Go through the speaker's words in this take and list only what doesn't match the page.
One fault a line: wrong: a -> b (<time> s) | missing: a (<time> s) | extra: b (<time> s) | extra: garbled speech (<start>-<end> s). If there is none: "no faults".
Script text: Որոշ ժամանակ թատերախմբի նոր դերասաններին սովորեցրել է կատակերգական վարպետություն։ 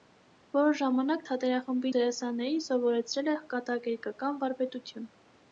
missing: նոր (1.9 s)